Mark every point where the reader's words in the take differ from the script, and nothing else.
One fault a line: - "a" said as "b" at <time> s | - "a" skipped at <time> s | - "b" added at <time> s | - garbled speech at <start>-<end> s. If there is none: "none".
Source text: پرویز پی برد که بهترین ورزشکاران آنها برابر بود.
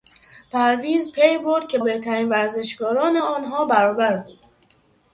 none